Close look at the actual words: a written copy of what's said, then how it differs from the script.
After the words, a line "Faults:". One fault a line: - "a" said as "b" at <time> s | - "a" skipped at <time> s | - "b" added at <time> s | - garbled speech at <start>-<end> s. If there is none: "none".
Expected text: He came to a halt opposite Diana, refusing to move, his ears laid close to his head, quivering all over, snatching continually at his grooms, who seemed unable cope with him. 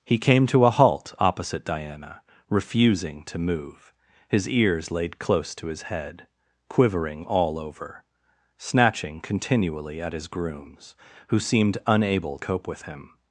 He came to a halt opposite Diana, refusing to move, his ears laid close to his head, quivering all over, snatching continually at his grooms, who seemed unable cope with him.
Faults:
none